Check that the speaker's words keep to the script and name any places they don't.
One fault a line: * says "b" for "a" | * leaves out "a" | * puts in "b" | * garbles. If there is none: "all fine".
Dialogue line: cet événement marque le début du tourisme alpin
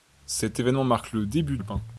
* leaves out "du tourisme"